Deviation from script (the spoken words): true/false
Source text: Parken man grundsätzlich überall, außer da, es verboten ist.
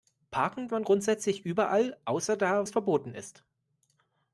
false